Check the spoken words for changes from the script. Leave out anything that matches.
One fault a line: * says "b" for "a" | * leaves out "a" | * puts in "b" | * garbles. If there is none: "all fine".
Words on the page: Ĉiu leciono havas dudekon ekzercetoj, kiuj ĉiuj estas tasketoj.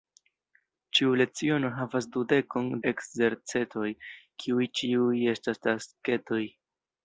all fine